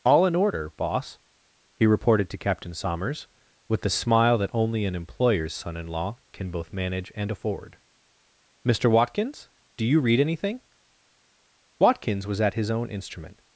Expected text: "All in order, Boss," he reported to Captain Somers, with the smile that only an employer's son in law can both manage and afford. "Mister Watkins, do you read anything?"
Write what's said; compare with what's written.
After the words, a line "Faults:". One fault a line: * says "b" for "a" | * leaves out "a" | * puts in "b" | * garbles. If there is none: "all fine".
"All in order, Boss," he reported to Captain Somers, with the smile that only an employer's son in law can both manage and afford. "Mister Watkins, do you read anything?" Watkins was at his own instrument
Faults:
* puts in "Watkins was at his own instrument"